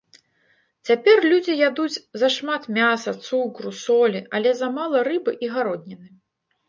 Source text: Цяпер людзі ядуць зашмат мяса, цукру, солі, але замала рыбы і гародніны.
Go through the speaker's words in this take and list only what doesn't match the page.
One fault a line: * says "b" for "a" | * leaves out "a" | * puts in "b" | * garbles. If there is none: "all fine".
all fine